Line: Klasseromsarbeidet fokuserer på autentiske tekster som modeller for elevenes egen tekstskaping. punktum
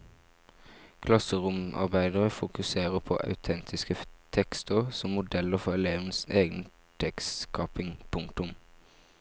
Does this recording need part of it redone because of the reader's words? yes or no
no